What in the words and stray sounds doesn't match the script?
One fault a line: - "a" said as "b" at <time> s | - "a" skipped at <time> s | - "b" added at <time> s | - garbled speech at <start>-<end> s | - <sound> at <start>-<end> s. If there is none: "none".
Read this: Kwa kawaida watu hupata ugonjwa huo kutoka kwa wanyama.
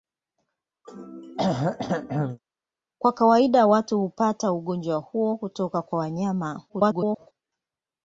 - throat clearing at 0.8-2.4 s
- garbled speech at 6.7-7.3 s